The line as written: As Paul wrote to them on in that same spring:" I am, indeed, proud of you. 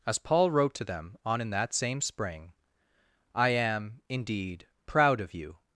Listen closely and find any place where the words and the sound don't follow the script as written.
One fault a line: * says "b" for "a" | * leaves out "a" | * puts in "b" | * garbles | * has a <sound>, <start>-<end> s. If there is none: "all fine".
all fine